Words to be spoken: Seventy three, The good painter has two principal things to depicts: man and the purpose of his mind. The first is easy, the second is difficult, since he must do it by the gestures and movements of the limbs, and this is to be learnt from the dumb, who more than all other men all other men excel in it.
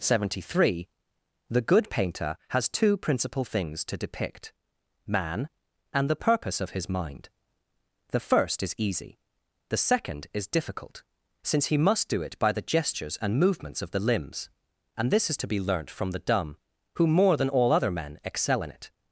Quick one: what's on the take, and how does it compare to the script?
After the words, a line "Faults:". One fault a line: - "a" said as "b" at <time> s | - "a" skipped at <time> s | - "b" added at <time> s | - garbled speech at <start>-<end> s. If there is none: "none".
Seventy three, The good painter has two principal things to depict: man and the purpose of his mind. The first is easy, the second is difficult, since he must do it by the gestures and movements of the limbs, and this is to be learnt from the dumb, who more than all other men excel in it.
Faults:
- "depicts" said as "depict" at 4.0 s
- "all other men" skipped at 18.2 s